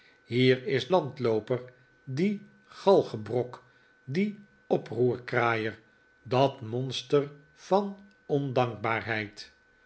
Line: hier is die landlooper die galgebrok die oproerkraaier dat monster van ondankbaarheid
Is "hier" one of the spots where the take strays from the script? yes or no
no